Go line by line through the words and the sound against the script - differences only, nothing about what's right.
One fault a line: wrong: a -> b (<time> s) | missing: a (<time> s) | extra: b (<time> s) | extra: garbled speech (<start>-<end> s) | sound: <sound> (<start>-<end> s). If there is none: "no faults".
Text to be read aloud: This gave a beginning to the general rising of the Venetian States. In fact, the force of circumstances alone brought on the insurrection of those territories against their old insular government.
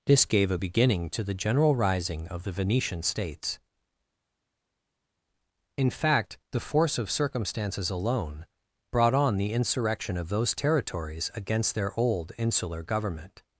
no faults